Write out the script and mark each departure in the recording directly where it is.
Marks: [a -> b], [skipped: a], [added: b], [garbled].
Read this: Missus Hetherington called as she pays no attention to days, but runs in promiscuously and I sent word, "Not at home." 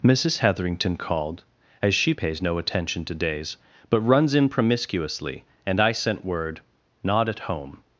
Missus Hetherington called as she pays no attention to days, but runs in promiscuously and I sent word, "Not at home."